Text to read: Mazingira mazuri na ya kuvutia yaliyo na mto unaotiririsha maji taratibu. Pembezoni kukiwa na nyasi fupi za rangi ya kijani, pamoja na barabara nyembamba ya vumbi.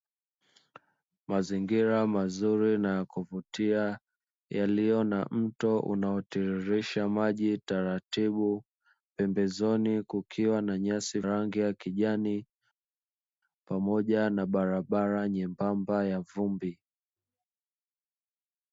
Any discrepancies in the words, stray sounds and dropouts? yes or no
yes